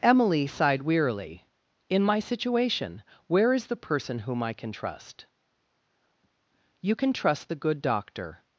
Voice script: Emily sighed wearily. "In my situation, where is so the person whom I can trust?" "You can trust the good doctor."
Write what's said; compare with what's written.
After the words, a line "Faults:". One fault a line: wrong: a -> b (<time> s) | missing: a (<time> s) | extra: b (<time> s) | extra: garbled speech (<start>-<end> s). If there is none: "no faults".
Emily sighed wearily. "In my situation, where is the person whom I can trust?" "You can trust the good doctor."
Faults:
missing: so (3.7 s)